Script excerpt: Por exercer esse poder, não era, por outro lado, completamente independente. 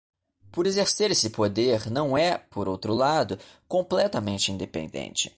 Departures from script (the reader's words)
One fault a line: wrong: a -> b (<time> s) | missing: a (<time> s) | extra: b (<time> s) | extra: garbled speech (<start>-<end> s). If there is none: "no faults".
wrong: era -> é (2.2 s)